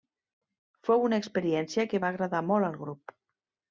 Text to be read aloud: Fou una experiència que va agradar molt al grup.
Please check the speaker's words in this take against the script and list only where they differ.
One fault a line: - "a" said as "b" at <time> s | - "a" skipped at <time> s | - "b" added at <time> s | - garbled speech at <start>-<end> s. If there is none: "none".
none